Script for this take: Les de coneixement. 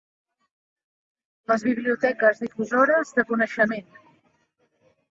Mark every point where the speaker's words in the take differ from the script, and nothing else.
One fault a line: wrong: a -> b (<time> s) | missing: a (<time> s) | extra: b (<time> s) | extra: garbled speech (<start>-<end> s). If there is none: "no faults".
extra: biblioteques difusores (1.7 s)